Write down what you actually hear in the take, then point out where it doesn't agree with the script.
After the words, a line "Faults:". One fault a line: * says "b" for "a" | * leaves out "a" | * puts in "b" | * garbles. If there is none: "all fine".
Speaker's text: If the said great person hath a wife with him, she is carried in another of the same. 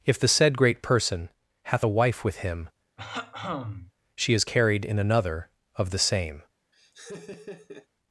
If the said great person hath a wife with him, she is carried in another of the same.
Faults:
all fine